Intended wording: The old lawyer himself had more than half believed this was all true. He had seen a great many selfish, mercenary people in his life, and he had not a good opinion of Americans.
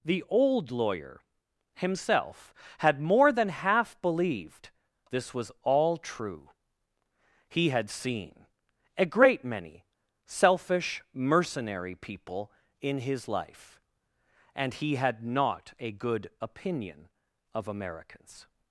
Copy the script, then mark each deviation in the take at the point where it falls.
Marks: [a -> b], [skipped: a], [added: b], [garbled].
The old lawyer himself had more than half believed this was all true. He had seen a great many selfish, mercenary people in his life, and he had not a good opinion of Americans.